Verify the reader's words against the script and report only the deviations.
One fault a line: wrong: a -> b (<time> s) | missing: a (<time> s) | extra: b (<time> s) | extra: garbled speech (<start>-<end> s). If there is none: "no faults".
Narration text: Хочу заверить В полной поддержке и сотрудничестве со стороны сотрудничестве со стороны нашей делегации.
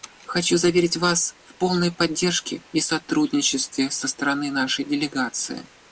extra: Вас (1.0 s)
missing: сотрудничестве со стороны (4.5 s)